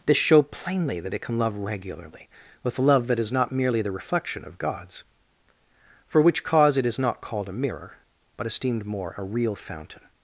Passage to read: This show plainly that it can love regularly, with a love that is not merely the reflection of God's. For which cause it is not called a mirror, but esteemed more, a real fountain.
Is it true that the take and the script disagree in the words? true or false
false